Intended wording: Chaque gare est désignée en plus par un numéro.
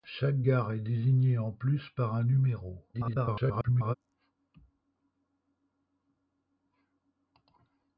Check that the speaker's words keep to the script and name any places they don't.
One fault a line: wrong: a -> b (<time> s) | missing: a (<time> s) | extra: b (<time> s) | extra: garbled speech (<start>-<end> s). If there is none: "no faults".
extra: garbled speech (2.9-3.9 s)